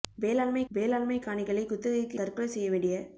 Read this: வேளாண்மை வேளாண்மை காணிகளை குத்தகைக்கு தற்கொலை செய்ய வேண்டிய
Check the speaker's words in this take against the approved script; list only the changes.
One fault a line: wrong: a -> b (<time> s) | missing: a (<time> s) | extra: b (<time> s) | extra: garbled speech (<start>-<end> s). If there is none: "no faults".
no faults